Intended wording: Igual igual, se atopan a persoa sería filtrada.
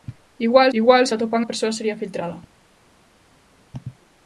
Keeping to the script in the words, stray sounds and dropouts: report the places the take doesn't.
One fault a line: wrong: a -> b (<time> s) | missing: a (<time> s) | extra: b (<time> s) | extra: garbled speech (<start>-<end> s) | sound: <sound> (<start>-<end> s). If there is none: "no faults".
no faults